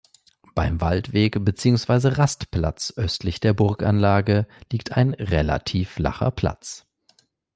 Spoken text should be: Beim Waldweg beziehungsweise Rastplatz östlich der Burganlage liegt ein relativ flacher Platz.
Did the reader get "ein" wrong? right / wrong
right